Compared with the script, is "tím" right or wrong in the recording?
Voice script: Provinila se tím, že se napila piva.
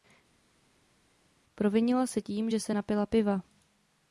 right